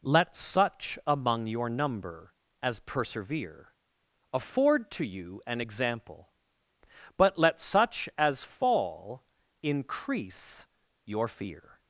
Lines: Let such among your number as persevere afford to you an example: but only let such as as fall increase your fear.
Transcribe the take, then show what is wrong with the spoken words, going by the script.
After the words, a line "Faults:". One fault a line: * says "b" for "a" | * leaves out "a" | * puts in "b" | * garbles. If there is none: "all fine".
Let such among your number as persevere afford to you an example: but let such as fall increase your fear.
Faults:
* leaves out "only"
* leaves out "as"